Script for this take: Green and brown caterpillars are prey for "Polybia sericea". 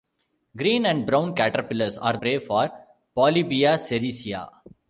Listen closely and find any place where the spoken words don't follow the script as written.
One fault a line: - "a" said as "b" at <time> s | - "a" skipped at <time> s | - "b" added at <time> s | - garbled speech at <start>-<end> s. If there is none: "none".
none